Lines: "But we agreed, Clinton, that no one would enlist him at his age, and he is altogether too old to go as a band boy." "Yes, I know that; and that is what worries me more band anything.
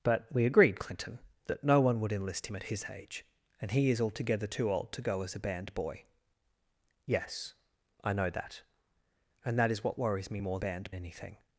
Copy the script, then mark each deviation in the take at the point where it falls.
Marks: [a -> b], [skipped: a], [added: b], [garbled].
"But we agreed, Clinton, that no one would enlist him at his age, and he is altogether too old to go as a band boy." "Yes, I know that; and that is what worries me more band anything.